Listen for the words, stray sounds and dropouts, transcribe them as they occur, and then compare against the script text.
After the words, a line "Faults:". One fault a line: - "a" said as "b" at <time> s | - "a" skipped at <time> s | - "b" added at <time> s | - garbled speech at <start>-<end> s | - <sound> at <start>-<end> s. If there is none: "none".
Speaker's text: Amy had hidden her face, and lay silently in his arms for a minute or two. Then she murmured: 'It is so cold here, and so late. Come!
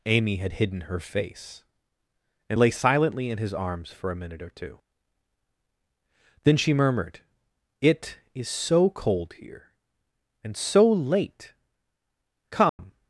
Amy had hidden her face, and lay silently in his arms for a minute or two. Then she murmured: 'It is so cold here, and so late. Come!
Faults:
- dropout at 12.7-12.8 s